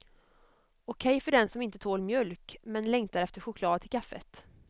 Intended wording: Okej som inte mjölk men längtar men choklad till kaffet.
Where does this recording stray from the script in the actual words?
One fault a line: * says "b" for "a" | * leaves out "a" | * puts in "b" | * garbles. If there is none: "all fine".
* puts in "för den"
* puts in "tål"
* says "efter" for "men"